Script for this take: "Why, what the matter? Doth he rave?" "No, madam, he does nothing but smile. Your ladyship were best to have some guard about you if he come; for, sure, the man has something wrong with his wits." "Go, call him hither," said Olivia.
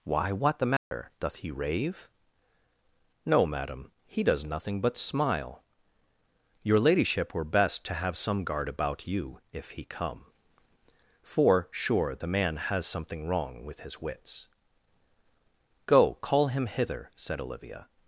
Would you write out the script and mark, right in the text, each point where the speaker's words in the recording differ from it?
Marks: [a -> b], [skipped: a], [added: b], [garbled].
"Why, what the matter? Doth he rave?" "No, madam, he does nothing but smile. Your ladyship were best to have some guard about you if he come; for, sure, the man has something wrong with his wits." "Go, call him hither," said Olivia.